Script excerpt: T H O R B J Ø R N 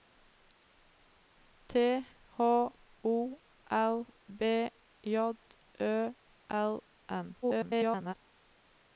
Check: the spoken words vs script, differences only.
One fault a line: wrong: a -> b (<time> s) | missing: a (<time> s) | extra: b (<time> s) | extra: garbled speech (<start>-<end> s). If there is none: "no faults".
extra: garbled speech (7.4-8.1 s)